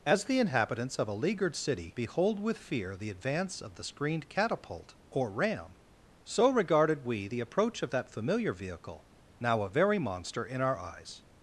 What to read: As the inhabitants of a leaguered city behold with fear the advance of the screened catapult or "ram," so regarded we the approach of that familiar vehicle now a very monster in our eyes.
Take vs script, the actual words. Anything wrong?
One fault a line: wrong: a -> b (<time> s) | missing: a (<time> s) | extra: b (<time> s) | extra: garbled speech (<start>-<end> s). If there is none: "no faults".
no faults